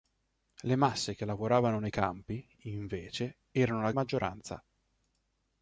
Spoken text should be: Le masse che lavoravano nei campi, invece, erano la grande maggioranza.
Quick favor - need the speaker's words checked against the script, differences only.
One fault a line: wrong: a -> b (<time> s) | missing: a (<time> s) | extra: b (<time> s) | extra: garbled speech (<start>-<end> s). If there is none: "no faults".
missing: grande (3.9 s)